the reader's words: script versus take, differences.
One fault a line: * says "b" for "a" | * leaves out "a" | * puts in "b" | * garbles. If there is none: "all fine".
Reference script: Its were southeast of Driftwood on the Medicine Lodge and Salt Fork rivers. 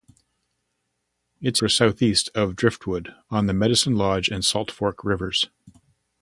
all fine